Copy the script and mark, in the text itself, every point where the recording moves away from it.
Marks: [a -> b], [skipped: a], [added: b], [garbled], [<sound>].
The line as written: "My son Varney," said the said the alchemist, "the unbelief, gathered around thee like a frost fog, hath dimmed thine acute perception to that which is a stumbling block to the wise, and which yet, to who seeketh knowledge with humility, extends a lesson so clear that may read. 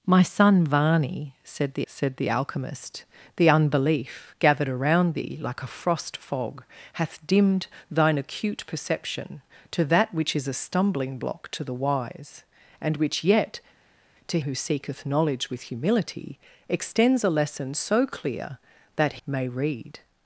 "My son Varney," said the said the alchemist, "the unbelief, gathered around thee like a frost fog, hath dimmed thine acute perception to that which is a stumbling block to the wise, and which yet, to who seeketh knowledge with humility, extends a lesson so clear that may read.